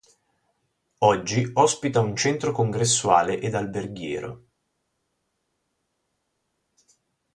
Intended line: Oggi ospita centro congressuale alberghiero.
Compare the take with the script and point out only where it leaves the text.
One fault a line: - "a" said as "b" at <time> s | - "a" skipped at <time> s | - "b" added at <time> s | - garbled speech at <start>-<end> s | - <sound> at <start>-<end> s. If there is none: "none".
- "un" added at 2.0 s
- "ed" added at 3.4 s